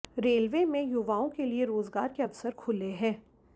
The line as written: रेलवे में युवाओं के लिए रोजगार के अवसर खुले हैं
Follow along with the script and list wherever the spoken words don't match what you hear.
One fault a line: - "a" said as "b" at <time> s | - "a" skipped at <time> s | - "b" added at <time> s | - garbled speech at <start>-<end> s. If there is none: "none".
none